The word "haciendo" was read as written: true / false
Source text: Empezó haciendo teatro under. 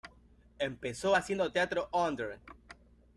true